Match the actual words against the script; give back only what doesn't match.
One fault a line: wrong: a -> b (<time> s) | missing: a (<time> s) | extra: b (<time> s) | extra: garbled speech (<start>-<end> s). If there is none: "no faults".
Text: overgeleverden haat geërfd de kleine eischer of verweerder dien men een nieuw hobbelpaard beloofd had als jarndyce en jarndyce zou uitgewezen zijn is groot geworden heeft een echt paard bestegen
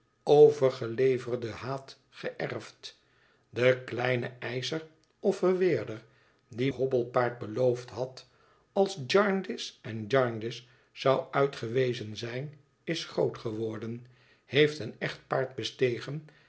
missing: men een nieuw (6.7 s)